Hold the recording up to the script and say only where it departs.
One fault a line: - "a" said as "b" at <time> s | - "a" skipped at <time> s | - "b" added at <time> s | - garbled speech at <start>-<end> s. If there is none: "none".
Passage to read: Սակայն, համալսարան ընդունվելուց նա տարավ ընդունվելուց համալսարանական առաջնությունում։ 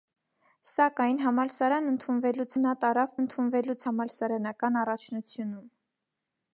none